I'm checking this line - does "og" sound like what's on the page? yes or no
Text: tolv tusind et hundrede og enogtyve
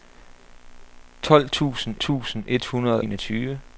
no